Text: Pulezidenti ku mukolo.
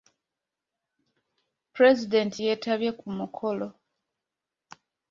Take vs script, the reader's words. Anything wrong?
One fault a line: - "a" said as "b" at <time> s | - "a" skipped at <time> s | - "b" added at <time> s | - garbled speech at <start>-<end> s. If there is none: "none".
- "yeetabye" added at 2.4 s